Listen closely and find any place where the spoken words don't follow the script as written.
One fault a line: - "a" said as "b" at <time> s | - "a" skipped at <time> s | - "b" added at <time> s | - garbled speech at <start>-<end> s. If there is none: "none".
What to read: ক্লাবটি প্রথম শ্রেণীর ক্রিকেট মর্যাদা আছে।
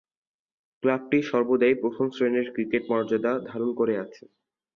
- "সর্বদাই" added at 1.3 s
- "ধারণ করে" added at 3.5 s